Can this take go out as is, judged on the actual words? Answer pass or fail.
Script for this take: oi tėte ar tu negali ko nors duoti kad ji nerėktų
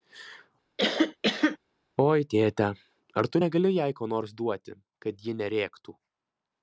fail